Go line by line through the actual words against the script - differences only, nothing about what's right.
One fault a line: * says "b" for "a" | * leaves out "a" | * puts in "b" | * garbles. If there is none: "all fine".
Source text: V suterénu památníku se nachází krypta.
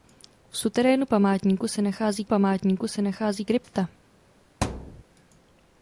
* puts in "památníku se nachází"